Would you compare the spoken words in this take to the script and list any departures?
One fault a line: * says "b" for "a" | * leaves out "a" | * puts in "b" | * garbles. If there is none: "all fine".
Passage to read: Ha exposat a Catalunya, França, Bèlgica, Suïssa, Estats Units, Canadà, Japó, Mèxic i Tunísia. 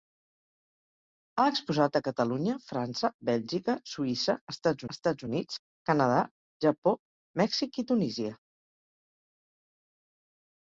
* puts in "Estats"